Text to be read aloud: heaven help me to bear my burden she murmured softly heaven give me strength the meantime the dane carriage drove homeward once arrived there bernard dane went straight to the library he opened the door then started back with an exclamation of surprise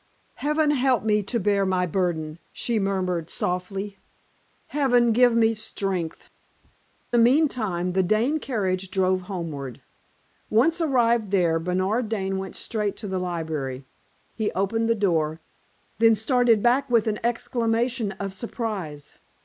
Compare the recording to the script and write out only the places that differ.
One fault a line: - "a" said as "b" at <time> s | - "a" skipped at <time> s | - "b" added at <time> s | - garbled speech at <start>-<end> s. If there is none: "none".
none